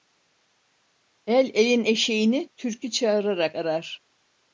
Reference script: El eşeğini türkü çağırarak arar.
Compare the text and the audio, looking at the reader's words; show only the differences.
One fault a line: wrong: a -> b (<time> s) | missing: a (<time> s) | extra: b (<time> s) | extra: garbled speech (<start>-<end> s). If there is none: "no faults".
extra: elin (1.5 s)